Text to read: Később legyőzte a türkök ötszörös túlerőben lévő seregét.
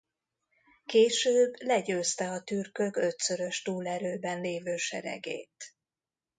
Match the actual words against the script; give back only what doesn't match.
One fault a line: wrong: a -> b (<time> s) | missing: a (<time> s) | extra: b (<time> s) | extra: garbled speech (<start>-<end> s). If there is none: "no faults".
no faults